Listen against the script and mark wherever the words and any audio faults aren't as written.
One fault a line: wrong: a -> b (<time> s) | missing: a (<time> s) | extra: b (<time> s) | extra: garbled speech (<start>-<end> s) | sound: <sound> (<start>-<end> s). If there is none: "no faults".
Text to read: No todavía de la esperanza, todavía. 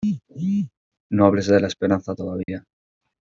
wrong: todavía -> hables (1.3 s)
sound: dropout (2.4-2.5 s)